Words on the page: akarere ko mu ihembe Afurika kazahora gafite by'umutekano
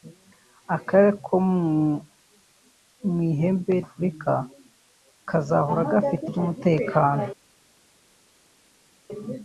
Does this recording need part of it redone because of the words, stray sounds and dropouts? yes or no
no